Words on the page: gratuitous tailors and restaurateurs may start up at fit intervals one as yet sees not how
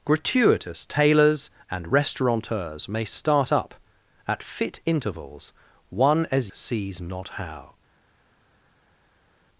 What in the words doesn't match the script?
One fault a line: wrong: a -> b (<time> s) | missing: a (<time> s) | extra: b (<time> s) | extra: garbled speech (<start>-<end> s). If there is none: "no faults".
missing: yet (6.5 s)